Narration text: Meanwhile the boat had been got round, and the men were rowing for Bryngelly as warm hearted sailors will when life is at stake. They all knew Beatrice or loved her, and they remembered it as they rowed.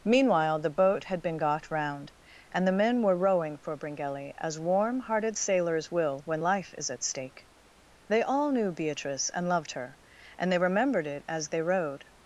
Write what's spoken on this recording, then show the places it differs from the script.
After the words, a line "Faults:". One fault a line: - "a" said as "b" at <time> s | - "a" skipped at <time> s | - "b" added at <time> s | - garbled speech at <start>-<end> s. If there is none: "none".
Meanwhile the boat had been got round, and the men were rowing for Bryngelly as warm hearted sailors will when life is at stake. They all knew Beatrice and loved her, and they remembered it as they rowed.
Faults:
- "or" said as "and" at 9.3 s